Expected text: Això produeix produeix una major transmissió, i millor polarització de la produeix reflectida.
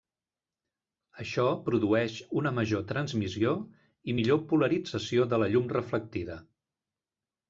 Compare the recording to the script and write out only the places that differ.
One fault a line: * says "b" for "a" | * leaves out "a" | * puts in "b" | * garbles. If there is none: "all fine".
* leaves out "produeix"
* says "llum" for "produeix"